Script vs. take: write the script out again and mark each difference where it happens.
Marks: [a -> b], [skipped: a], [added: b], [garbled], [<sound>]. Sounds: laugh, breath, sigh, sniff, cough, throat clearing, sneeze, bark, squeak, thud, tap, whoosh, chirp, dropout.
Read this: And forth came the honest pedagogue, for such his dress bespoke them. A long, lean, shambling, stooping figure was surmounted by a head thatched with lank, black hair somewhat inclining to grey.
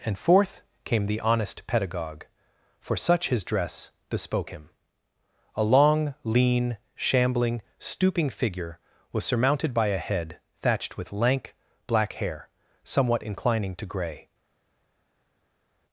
And forth came the honest pedagogue, for such his dress bespoke [them. -> him] A long, lean, shambling, stooping figure was surmounted by a head thatched with lank, black hair somewhat inclining to grey.